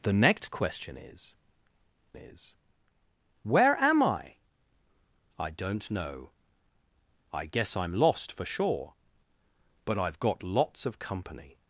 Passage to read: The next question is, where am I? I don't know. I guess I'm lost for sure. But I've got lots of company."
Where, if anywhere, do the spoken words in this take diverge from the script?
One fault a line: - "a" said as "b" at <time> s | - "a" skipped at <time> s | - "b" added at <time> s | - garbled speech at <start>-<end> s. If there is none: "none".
- "is" added at 2.2 s